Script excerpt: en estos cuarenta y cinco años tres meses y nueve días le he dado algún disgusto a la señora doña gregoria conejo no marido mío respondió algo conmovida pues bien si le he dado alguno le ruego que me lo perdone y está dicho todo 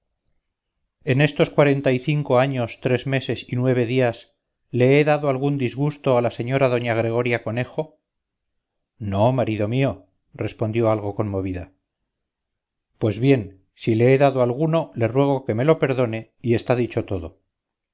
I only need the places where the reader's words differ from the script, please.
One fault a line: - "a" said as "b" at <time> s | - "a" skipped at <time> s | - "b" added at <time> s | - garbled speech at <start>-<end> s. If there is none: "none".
none